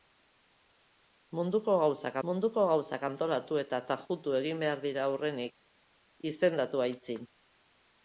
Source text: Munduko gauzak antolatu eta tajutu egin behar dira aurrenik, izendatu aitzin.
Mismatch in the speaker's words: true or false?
true